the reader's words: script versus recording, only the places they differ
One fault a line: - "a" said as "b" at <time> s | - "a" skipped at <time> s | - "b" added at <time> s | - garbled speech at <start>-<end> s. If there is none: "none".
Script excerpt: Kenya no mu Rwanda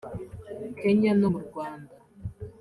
none